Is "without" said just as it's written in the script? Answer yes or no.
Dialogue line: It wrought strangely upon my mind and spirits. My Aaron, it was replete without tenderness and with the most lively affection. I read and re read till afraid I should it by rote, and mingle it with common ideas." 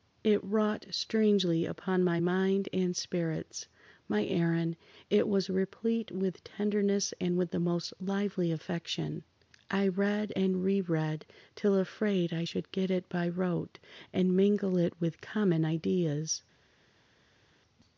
no